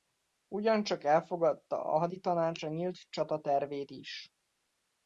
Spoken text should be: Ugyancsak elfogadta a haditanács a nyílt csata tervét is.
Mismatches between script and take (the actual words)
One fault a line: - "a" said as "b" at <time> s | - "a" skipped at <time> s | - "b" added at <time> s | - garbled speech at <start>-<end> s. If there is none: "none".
none